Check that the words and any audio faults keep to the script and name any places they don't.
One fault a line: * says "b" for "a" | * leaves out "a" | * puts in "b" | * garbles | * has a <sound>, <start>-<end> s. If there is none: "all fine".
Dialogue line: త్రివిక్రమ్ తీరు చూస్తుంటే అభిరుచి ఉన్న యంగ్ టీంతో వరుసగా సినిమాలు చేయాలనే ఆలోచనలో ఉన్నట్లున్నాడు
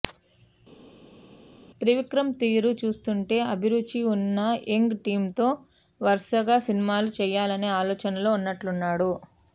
all fine